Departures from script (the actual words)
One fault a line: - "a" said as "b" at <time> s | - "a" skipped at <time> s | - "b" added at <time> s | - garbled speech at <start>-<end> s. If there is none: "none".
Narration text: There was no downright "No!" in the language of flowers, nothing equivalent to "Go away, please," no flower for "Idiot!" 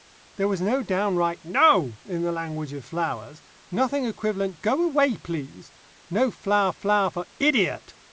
- "to" skipped at 4.6 s
- "flower" added at 6.7 s